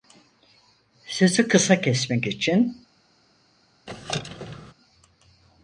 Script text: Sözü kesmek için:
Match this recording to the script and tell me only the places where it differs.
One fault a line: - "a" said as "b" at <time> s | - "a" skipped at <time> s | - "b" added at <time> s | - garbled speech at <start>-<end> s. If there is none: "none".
- "kısa" added at 1.5 s